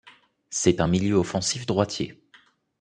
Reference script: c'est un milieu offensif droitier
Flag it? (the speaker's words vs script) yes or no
no